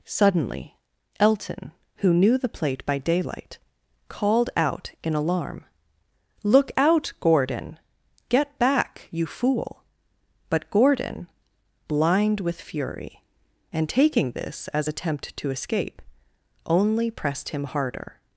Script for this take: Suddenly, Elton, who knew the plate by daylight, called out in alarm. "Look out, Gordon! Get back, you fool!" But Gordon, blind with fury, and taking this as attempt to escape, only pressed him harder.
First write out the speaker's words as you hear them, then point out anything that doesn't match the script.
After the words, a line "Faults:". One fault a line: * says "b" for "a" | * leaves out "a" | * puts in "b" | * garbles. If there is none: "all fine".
Suddenly, Elton, who knew the plate by daylight, called out in alarm. "Look out, Gordon! Get back, you fool!" But Gordon, blind with fury, and taking this as attempt to escape, only pressed him harder.
Faults:
all fine